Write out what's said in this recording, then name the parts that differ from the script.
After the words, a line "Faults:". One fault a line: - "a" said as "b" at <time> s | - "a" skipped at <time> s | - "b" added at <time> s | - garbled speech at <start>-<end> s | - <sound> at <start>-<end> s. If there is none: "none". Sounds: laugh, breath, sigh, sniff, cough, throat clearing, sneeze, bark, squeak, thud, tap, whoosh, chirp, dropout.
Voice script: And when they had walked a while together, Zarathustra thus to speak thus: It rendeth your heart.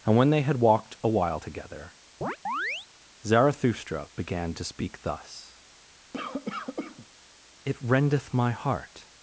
And when they had walked a while together, Zarathustra began to speak thus: It rendeth my heart.
Faults:
- chirp at 2.2-2.9 s
- "thus" said as "began" at 4.2 s
- cough at 6.1-7.1 s
- "your" said as "my" at 8.3 s